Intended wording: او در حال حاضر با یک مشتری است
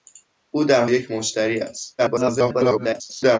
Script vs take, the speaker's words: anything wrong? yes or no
yes